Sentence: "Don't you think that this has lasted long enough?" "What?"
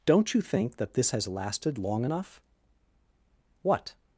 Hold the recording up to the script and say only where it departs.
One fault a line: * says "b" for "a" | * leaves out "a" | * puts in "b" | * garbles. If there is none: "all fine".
all fine